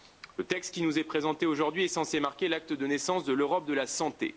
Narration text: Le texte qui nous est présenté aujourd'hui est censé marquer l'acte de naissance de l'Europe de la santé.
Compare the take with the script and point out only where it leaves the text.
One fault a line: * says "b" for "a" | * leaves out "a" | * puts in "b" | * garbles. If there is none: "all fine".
all fine